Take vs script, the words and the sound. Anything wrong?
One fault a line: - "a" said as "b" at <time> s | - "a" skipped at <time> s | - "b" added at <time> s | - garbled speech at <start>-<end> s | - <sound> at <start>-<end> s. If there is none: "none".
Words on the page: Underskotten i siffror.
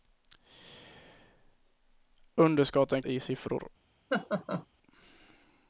- laugh at 4.1-4.7 s